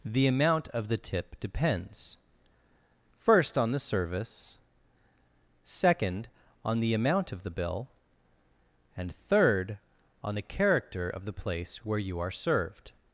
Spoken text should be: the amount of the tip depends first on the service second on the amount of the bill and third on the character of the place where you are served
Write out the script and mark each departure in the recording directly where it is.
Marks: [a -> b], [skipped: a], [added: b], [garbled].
the amount of the tip depends first on the service second on the amount of the bill and third on the character of the place where you are served